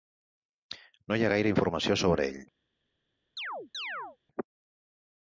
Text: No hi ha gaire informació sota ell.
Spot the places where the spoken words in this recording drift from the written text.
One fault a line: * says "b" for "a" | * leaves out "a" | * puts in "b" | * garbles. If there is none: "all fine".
* says "sobre" for "sota"